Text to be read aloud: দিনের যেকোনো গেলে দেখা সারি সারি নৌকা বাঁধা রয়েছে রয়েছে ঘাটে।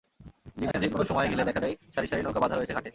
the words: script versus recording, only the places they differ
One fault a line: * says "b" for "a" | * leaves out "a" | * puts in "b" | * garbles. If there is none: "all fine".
* puts in "সময়"
* puts in "যায়"
* leaves out "রয়েছে"